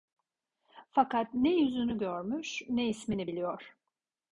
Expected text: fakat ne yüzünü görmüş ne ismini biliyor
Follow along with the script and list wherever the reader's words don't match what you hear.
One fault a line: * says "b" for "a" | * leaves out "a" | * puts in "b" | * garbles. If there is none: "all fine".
all fine